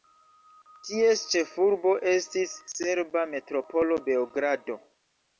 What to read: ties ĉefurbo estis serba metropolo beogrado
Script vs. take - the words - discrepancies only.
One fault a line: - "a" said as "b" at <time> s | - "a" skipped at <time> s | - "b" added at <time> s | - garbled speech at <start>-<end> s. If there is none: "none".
none